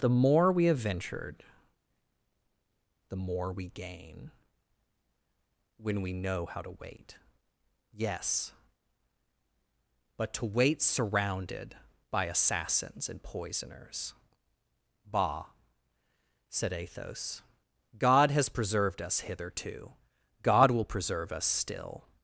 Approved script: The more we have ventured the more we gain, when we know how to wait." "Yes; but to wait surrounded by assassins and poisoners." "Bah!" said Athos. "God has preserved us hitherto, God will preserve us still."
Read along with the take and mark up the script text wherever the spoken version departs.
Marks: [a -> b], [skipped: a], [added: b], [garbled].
The more we have ventured the more we gain, when we know how to wait." "Yes; but to wait surrounded by assassins and poisoners." "Bah!" said Athos. "God has preserved us hitherto, God will preserve us still."